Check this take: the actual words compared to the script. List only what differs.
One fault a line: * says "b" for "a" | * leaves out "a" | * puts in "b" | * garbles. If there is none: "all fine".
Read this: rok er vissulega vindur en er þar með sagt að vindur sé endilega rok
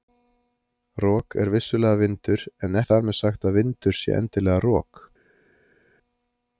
all fine